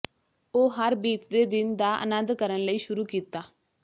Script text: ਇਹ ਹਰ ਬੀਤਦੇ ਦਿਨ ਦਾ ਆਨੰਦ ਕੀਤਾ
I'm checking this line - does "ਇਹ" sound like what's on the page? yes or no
no